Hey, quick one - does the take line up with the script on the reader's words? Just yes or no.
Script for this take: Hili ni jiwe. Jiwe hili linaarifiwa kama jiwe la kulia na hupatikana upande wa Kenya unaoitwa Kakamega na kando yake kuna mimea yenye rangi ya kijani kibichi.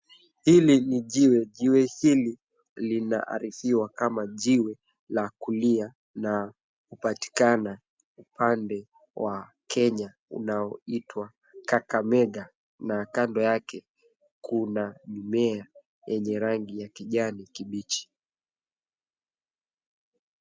yes